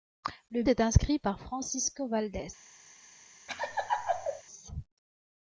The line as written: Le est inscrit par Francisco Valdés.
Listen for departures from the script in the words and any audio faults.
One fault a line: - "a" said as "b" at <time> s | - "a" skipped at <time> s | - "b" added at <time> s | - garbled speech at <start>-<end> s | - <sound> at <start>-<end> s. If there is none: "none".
- laugh at 3.5-4.4 s